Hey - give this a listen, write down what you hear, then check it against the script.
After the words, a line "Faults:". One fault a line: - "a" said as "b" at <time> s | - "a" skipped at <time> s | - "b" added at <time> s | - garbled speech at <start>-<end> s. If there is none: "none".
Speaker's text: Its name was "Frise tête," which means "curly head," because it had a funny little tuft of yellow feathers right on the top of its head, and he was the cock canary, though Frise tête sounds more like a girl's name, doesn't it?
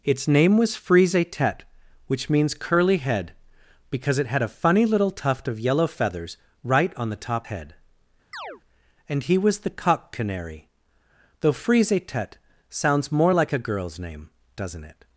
Its name was "Frise tête," which means "curly head," because it had a funny little tuft of yellow feathers right on the top head, and he was the cock canary, though Frise tête sounds more like a girl's name, doesn't it?
Faults:
- "of its" skipped at 7.5 s